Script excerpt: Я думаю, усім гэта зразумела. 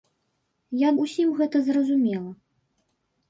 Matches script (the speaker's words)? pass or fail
fail